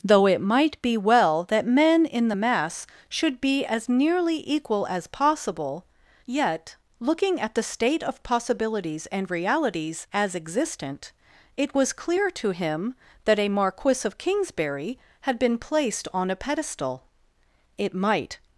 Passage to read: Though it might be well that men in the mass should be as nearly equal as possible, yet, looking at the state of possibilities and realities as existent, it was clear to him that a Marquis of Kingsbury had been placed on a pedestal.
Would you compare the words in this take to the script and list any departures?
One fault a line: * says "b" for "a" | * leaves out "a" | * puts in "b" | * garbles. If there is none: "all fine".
* puts in "It might"